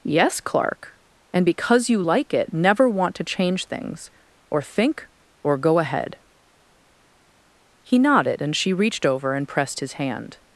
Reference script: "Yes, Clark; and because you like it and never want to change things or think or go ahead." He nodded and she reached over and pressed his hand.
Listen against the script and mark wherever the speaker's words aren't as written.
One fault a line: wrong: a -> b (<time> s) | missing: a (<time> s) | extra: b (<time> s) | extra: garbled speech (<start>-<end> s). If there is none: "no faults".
missing: and (2.5 s)